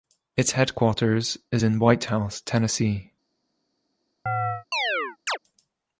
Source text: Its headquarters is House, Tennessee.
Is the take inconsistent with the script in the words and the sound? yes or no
yes